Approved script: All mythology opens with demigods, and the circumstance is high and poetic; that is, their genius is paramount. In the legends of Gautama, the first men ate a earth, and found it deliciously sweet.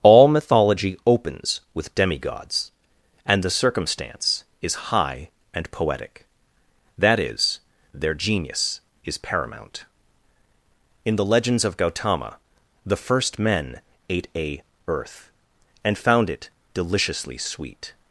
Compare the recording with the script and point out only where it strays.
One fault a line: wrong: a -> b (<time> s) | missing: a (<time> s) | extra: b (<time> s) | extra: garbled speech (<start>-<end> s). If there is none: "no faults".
no faults